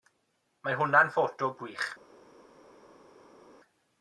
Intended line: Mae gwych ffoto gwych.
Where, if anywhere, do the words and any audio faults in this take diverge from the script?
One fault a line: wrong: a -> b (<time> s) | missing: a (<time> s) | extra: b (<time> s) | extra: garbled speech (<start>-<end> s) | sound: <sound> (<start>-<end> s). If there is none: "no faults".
wrong: gwych -> hwnna'n (0.8 s)